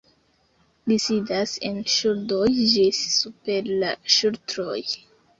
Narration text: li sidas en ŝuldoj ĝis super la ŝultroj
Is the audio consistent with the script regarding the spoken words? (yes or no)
yes